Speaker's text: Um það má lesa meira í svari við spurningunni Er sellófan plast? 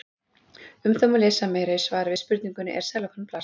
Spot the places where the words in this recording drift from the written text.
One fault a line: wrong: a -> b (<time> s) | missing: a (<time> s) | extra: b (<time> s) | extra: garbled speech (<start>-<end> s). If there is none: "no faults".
no faults